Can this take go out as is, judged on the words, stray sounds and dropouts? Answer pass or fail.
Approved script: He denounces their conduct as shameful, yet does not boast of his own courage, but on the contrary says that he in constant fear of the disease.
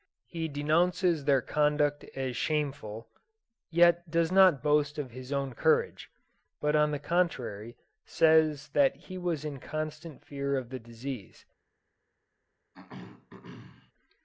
fail